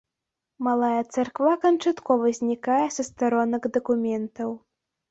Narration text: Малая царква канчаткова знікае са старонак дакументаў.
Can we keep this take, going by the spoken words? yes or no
yes